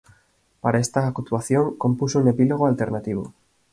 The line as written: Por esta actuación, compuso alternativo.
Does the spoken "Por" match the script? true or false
false